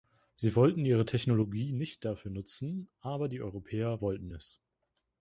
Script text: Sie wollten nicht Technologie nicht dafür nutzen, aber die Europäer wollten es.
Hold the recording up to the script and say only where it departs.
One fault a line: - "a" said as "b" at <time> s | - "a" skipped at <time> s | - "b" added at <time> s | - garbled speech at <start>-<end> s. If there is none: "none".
- "nicht" said as "ihre" at 0.8 s